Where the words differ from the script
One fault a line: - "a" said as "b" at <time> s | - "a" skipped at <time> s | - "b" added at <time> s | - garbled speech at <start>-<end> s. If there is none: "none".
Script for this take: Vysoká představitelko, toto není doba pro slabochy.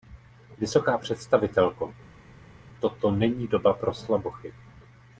none